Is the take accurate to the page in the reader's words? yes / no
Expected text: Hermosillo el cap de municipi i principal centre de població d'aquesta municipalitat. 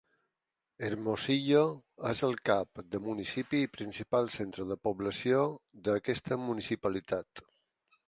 no